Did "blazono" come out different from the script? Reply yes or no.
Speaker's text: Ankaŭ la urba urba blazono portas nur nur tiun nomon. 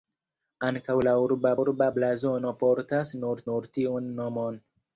no